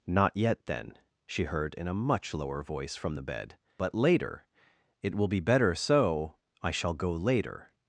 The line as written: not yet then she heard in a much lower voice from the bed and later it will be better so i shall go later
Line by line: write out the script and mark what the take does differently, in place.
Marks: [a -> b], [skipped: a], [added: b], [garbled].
not yet then she heard in a much lower voice from the bed [and -> but] later it will be better so i shall go later